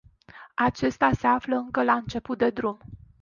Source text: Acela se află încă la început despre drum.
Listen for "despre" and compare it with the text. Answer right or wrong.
wrong